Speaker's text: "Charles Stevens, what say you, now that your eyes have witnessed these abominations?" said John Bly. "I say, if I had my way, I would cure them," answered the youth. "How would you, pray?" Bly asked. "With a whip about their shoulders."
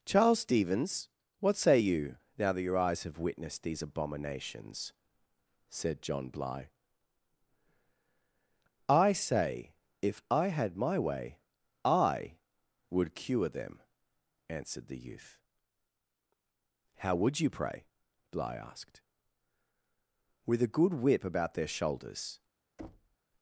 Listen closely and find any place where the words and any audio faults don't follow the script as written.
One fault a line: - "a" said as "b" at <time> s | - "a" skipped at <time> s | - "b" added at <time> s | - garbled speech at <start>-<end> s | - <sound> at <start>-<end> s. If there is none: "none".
- "good" added at 20.7 s
- thud at 22.8-23.2 s